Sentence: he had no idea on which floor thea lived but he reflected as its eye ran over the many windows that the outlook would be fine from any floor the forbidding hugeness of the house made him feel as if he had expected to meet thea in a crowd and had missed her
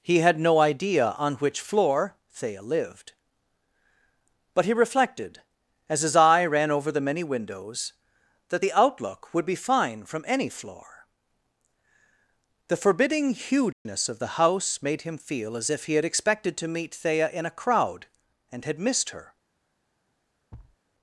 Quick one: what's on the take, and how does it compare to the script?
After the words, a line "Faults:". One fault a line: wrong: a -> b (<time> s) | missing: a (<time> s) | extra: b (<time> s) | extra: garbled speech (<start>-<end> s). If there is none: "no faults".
he had no idea on which floor thea lived but he reflected as his eye ran over the many windows that the outlook would be fine from any floor the forbidding hugeness of the house made him feel as if he had expected to meet thea in a crowd and had missed her
Faults:
wrong: its -> his (6.0 s)